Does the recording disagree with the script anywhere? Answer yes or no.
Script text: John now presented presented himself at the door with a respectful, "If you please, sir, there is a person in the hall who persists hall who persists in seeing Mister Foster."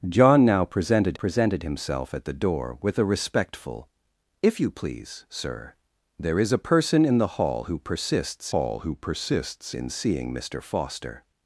no